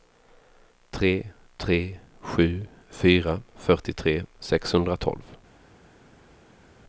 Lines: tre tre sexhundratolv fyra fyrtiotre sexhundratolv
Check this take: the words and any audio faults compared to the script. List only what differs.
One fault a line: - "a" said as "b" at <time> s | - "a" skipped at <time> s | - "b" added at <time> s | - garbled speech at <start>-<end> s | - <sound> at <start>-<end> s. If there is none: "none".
- "sexhundratolv" said as "sju" at 2.2 s